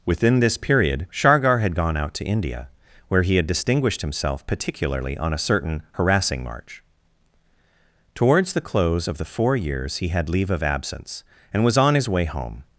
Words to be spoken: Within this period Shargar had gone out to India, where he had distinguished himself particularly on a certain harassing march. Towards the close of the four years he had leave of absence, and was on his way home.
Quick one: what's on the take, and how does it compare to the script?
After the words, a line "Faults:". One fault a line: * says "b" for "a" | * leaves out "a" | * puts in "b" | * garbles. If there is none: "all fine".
Within this period Shargar had gone out to India, where he had distinguished himself particularly on a certain harassing march. Towards the close of the four years he had leave of absence, and was on his way home.
Faults:
all fine